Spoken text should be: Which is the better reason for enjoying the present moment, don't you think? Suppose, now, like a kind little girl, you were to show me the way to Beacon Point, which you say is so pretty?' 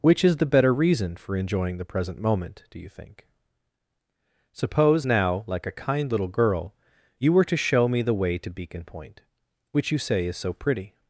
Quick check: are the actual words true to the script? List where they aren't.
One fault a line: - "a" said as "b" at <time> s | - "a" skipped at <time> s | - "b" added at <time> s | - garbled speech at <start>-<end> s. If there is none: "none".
- "don't" said as "do" at 2.7 s